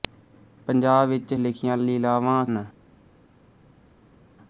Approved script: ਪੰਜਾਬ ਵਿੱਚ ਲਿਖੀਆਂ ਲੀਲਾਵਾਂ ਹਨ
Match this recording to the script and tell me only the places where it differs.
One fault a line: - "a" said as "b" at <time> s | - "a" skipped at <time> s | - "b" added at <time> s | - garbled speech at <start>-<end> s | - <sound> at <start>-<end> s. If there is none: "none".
none